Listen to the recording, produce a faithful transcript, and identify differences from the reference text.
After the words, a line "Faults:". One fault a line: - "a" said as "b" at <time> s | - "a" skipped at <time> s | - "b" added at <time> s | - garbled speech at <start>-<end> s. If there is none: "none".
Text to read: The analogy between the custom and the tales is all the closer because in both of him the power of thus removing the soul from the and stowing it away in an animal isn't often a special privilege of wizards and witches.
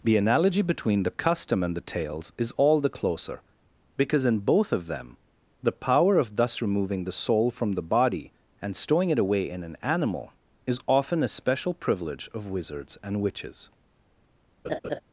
The analogy between the custom and the tales is all the closer because in both of them the power of thus removing the soul from the body and stowing it away in an animal is often a special privilege of wizards and witches.
Faults:
- "him" said as "them" at 4.9 s
- "body" added at 7.8 s
- "isn't" said as "is" at 10.7 s